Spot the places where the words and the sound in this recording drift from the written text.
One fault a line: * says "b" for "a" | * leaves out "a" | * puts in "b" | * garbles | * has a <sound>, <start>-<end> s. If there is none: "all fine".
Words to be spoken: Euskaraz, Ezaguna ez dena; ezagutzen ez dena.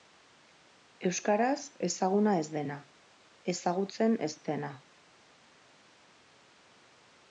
all fine